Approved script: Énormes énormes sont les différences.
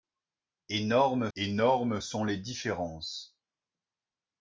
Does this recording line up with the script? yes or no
yes